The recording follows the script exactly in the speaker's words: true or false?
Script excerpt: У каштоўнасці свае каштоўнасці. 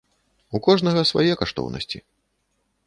false